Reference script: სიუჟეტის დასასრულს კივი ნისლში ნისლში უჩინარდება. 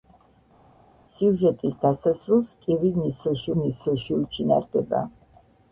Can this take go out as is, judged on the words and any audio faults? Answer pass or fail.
pass